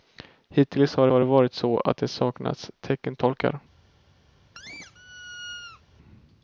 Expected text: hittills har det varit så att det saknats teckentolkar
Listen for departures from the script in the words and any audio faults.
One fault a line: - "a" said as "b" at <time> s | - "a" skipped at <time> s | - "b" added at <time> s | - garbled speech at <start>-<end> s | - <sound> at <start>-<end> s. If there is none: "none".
- "har" added at 1.1 s
- squeak at 4.5-5.8 s